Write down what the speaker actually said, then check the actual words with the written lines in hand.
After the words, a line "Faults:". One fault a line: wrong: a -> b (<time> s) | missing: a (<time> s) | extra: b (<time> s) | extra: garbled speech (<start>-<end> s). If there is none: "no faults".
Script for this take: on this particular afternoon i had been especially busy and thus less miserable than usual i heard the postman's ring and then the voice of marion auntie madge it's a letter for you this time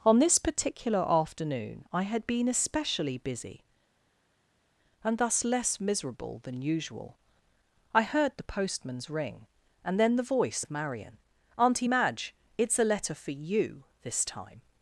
on this particular afternoon i had been especially busy and thus less miserable than usual i heard the postman's ring and then the voice of marion auntie madge it's a letter for you this time
Faults:
no faults